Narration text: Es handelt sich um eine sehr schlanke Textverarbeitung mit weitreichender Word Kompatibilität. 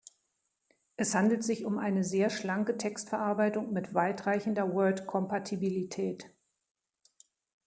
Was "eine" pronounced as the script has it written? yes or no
yes